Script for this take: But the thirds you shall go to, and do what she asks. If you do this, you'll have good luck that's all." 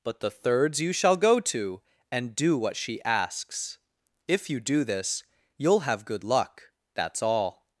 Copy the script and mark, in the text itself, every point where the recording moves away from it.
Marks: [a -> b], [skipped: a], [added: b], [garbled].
But the thirds you shall go to, and do what she asks. If you do this, you'll have good luck that's all."